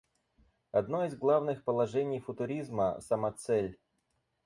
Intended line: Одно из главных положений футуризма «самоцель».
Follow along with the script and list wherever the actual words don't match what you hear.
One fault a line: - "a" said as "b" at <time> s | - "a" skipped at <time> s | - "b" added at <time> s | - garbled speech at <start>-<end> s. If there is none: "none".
none